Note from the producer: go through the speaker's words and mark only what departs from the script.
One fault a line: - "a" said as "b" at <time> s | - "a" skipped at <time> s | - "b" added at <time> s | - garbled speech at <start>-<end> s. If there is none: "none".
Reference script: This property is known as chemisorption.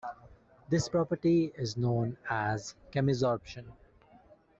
none